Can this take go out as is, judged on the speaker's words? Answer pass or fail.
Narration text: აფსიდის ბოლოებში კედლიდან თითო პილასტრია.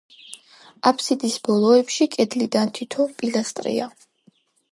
pass